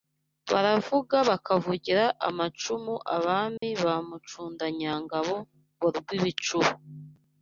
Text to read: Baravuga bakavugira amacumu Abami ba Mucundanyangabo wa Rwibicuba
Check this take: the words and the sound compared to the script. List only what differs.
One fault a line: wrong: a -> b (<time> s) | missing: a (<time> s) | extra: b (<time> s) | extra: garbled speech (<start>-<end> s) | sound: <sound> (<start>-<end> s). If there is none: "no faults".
sound: dropout (3.6-3.6 s)